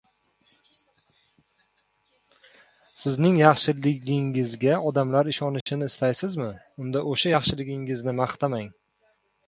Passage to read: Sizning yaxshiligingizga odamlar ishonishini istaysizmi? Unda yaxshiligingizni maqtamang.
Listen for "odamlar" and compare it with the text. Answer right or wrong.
right